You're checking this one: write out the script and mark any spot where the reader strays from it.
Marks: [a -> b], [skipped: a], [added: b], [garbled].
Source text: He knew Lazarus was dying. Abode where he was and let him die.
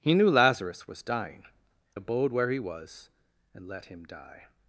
He knew Lazarus was dying. Abode where he was and let him die.